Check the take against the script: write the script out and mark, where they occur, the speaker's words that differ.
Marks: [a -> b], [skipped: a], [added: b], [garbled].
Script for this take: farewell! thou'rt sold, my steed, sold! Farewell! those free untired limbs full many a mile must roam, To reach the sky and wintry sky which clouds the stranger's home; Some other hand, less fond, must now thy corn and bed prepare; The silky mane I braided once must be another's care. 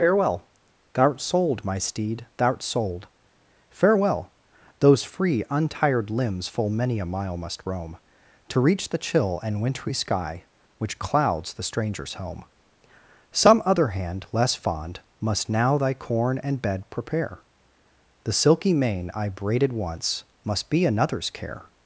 farewell! thou'rt sold, my steed, [added: thou'rt] sold! Farewell! those free untired limbs full many a mile must roam, To reach the [sky -> chill] and wintry sky which clouds the stranger's home; Some other hand, less fond, must now thy corn and bed prepare; The silky mane I braided once must be another's care.